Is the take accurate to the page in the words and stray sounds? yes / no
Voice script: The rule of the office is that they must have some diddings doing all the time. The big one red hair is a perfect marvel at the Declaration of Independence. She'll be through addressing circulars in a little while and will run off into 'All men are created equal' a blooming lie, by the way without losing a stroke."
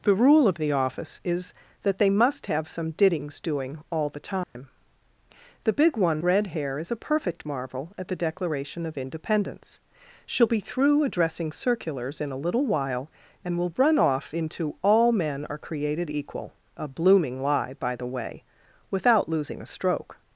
no